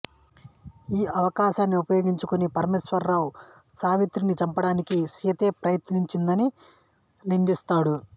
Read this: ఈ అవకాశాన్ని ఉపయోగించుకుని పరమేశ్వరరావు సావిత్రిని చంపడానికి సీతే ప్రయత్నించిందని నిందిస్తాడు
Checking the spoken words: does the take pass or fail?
pass